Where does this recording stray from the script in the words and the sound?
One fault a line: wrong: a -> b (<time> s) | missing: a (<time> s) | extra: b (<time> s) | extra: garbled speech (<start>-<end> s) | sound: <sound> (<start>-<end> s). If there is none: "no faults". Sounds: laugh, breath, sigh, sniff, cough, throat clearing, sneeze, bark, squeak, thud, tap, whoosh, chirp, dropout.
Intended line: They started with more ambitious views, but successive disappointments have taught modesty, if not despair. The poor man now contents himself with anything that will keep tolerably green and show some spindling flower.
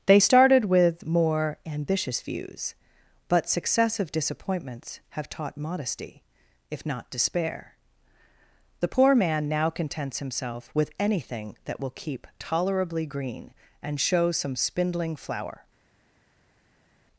no faults